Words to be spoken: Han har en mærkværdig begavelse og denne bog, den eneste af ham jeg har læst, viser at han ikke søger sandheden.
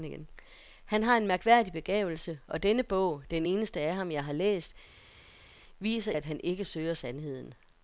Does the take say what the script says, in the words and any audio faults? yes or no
yes